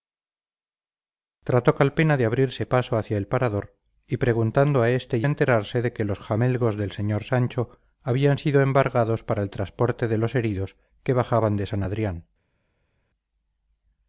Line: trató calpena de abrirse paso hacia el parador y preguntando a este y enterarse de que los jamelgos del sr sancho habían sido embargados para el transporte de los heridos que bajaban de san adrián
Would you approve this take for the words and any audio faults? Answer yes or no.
yes